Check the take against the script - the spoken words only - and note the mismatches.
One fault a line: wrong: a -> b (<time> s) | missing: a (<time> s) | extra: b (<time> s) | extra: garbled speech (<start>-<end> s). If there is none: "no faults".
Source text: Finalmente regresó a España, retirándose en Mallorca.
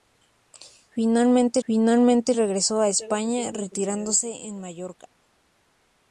extra: finalmente (1.7 s)